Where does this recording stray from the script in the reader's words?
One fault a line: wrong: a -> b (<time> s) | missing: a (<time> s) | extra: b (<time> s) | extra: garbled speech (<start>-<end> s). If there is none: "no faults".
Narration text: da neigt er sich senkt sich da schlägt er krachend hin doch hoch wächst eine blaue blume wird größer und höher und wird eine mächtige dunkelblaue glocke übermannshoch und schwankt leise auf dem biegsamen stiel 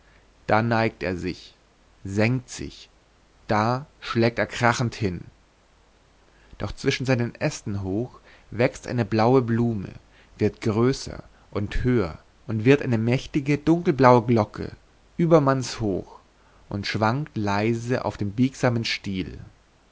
extra: zwischen seinen ästen (6.7 s)